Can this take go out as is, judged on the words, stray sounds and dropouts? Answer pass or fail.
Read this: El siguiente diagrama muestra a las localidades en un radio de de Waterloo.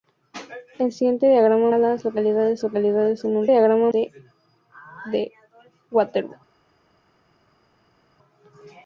fail